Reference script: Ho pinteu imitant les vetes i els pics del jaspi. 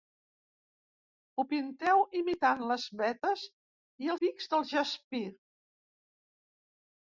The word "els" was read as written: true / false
false